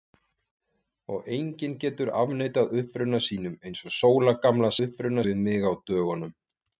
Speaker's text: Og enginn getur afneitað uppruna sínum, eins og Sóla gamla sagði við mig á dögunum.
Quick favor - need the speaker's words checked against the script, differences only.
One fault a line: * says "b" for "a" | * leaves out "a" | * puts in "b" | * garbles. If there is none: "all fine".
* says "uppruna" for "sagði"